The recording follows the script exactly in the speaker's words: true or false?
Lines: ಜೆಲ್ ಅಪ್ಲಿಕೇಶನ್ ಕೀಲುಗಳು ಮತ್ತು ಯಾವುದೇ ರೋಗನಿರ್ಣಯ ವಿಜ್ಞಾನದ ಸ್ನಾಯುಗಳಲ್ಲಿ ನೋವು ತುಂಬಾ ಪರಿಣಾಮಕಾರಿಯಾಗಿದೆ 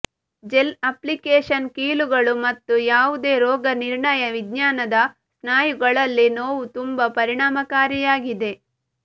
true